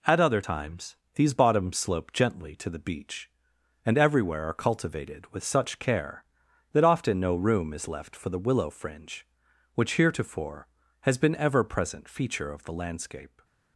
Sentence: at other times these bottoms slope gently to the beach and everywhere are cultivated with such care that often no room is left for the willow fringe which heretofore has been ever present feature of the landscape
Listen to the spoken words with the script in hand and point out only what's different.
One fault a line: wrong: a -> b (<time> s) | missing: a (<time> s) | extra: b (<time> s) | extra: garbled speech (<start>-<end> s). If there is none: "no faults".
no faults